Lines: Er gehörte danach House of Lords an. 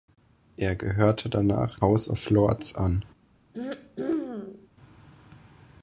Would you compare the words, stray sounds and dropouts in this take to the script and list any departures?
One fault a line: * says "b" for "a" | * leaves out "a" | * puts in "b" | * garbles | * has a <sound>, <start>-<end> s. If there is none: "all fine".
* has a throat clearing, 3.5-4.7 s